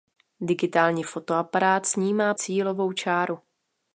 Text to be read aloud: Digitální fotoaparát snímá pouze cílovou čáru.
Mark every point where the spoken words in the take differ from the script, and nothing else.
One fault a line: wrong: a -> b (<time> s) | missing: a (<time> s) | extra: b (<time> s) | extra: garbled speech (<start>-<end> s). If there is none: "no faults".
missing: pouze (2.3 s)